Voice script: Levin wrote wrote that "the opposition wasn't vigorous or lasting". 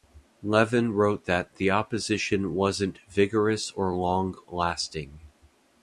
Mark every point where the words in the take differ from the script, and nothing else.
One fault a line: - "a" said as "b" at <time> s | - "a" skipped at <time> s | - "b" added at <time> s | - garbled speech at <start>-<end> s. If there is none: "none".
- "wrote" skipped at 1.3 s
- "long" added at 4.0 s